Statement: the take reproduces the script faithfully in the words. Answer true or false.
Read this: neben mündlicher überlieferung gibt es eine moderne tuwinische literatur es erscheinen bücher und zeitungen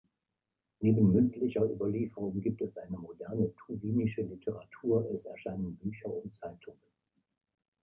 true